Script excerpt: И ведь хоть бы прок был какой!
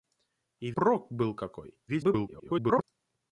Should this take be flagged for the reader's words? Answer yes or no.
yes